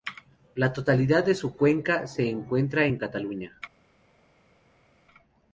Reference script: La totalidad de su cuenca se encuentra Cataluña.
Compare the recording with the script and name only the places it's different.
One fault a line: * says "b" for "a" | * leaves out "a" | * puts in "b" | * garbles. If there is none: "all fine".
* puts in "en"